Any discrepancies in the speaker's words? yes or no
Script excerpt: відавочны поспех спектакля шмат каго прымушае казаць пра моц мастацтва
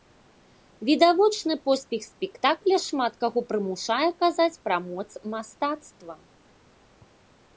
no